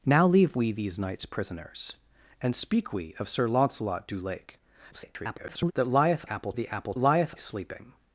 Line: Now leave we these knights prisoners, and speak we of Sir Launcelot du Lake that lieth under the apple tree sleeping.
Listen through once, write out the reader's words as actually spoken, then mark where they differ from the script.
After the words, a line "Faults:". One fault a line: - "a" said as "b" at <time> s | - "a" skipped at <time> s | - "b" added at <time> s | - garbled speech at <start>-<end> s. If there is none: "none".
Now leave we these knights prisoners, and speak we of Sir Launcelot du Lake [garbled] that lieth apple the apple lieth sleeping.
Faults:
- garbled speech at 4.9-5.7 s
- "under" said as "apple" at 6.3 s
- "tree" said as "lieth" at 7.0 s